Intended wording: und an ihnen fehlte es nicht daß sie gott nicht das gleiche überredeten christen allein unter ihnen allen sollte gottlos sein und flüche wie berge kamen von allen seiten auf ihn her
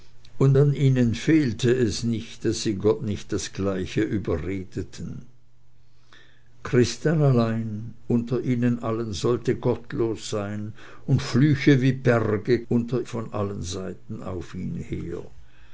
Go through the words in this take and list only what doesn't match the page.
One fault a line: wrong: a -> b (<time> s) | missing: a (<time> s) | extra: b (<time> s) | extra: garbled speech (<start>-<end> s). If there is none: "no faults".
wrong: kamen -> unter (12.7 s)